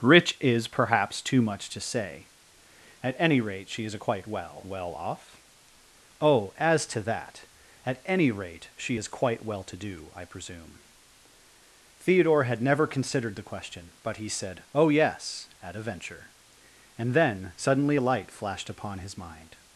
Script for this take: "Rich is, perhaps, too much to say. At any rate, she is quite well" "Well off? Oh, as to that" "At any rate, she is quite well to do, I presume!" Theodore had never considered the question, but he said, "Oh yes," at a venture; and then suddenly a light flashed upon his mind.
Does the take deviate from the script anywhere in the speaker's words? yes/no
no